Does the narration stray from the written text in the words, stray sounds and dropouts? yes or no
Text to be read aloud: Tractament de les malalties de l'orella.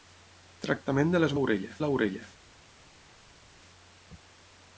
yes